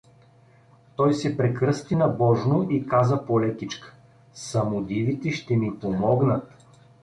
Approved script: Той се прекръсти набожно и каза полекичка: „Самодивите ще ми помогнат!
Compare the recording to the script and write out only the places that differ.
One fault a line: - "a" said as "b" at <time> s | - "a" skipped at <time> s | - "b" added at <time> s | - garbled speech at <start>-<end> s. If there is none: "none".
none